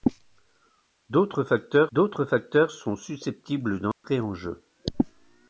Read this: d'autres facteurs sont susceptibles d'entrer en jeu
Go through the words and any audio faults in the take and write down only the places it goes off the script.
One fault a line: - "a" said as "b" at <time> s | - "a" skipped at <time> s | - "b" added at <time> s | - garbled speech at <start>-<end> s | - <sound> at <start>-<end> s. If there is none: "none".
- "d'autres facteurs" added at 1.9 s
- dropout at 3.9-4.0 s